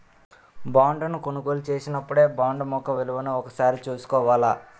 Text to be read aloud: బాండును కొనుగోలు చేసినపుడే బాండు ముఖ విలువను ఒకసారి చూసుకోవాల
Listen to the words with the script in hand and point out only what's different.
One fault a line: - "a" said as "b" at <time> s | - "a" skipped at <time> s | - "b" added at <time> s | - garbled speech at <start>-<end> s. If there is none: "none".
none